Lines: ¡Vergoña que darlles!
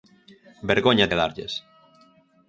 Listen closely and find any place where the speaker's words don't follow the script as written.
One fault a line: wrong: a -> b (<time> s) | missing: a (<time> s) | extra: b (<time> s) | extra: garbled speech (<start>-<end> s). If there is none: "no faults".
no faults